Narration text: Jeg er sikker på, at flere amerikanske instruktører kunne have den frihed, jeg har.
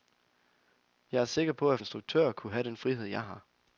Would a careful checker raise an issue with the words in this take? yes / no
yes